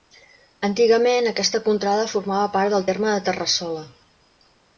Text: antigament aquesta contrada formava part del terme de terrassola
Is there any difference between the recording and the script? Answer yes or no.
no